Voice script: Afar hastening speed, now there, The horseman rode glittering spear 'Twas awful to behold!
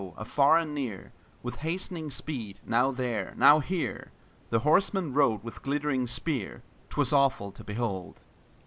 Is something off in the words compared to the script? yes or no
yes